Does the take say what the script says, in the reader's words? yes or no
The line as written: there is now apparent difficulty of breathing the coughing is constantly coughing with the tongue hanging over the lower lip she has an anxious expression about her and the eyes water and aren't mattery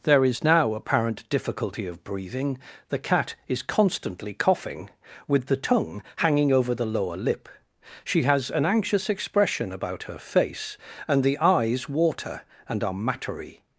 no